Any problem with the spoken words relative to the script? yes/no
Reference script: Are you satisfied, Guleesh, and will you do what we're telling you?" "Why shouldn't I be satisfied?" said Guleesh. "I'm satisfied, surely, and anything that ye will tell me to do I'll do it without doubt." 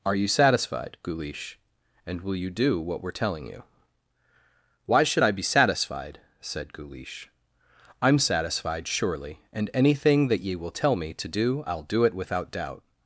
yes